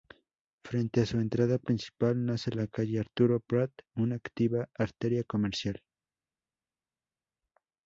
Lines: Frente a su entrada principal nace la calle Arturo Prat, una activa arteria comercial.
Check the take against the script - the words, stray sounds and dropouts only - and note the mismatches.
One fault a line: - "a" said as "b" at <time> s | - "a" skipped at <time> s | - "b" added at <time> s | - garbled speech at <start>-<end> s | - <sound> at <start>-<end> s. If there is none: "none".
none